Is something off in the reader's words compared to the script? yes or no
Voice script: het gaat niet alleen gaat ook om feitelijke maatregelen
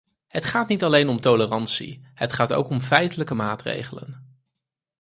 yes